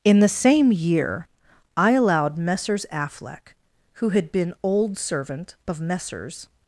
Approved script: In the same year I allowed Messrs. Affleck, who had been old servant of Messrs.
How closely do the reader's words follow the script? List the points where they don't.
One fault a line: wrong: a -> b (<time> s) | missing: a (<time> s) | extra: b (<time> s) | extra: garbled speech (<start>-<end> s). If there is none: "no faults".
no faults